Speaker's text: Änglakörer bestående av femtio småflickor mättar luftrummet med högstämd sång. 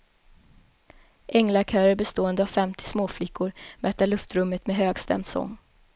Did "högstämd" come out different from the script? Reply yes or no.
no